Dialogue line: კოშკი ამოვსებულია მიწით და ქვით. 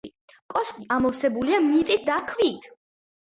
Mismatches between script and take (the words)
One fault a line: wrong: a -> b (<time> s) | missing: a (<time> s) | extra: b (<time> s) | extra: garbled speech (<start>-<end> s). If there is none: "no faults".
no faults